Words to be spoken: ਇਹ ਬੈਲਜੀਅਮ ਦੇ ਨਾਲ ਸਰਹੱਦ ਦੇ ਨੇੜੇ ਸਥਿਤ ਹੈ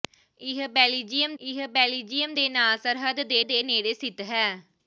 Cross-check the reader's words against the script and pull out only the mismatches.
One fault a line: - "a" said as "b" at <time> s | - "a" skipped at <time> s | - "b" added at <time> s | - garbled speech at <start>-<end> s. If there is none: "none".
- "ਇਹ ਬੈਲਜੀਅਮ" added at 1.4 s
- "ਦੇ" added at 3.4 s